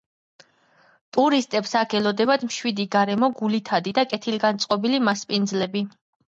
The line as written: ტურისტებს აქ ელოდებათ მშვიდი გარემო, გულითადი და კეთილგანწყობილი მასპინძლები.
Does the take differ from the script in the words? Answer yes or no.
no